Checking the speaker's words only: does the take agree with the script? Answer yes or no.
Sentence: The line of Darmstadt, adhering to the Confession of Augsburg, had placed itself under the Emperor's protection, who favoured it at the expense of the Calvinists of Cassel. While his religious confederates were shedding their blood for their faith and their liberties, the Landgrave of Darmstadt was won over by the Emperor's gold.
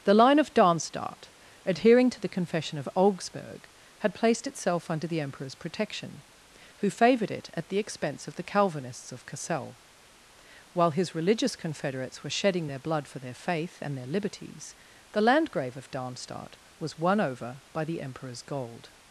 yes